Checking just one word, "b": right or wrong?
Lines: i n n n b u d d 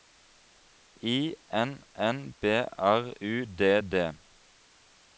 wrong